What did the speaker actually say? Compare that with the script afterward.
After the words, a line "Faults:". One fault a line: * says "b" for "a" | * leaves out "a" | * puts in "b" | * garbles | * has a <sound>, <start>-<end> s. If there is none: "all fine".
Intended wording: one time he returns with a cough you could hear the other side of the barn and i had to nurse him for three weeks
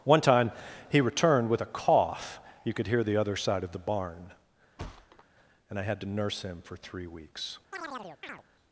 one time he returned with a cough you could hear the other side of the barn and i had to nurse him for three weeks
Faults:
* says "returned" for "returns"
* has a thud, 4.8-5.2 s
* has a chirp, 7.7-8.4 s